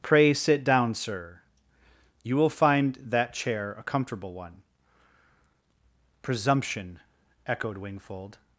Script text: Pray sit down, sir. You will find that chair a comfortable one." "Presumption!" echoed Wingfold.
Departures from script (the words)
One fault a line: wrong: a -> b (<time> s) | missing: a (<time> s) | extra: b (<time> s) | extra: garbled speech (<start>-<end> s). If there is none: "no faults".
no faults